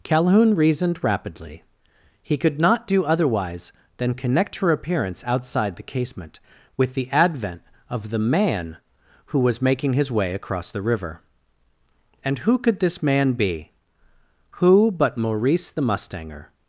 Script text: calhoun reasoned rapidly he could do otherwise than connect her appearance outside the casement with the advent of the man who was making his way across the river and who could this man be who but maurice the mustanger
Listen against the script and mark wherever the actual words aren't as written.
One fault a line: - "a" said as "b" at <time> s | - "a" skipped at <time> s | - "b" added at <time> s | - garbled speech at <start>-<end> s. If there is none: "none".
- "not" added at 2.6 s